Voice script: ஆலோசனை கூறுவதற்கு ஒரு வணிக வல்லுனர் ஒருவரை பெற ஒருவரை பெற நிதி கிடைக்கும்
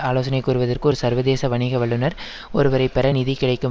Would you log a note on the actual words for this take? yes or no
yes